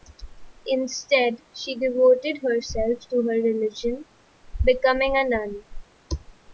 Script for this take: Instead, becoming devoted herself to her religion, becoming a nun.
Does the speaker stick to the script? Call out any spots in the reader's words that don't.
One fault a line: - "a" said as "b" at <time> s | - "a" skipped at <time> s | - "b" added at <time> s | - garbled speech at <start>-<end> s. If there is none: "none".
- "becoming" said as "she" at 1.5 s